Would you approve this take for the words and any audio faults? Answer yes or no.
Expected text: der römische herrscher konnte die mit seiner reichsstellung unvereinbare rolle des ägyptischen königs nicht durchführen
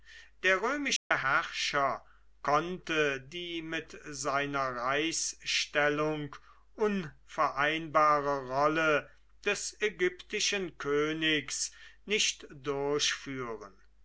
no